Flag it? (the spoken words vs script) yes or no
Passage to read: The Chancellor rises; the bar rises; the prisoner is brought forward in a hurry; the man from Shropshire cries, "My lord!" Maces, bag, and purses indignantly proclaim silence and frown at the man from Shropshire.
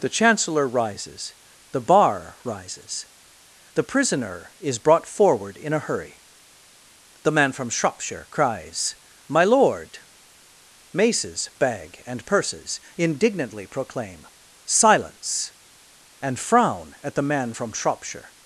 no